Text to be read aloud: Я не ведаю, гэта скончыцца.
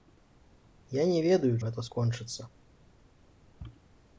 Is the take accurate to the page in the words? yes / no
yes